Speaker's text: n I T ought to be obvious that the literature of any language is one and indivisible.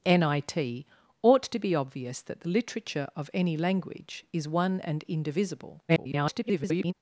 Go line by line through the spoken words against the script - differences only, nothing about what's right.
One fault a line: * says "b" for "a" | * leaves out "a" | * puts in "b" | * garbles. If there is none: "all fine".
* garbles